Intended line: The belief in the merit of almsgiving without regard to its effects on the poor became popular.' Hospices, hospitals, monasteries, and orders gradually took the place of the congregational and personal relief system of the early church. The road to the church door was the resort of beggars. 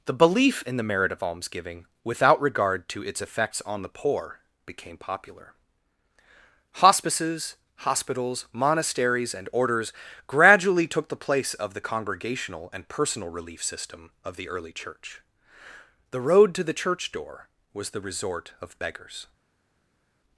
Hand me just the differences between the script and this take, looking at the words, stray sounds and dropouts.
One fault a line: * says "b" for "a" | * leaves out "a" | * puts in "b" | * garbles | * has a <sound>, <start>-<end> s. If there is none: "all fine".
all fine